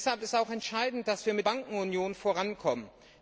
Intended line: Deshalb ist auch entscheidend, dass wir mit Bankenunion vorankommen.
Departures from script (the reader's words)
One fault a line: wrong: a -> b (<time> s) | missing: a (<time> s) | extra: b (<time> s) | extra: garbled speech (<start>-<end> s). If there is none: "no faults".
no faults